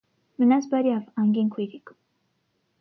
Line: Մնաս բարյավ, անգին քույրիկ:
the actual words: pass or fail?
pass